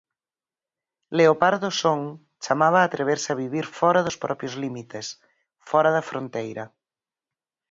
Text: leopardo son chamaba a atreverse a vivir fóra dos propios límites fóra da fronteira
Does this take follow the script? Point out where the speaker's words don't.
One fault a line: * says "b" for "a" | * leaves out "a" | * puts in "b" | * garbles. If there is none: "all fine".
all fine